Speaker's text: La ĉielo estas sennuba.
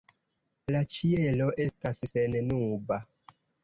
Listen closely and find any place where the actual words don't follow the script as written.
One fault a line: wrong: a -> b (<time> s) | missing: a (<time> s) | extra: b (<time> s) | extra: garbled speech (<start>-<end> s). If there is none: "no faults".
no faults